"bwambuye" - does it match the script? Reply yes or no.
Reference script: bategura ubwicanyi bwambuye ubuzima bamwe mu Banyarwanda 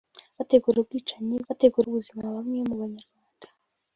no